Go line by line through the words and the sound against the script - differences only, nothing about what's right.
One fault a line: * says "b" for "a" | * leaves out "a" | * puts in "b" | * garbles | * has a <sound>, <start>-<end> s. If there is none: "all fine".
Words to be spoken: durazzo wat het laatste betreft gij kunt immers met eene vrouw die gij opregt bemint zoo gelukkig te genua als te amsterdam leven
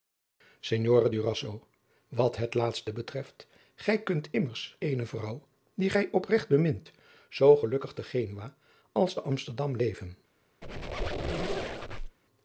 * leaves out "met"
* has a squeak, 10.6-12.2 s